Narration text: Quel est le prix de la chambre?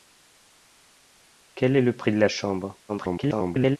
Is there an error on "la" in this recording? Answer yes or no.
no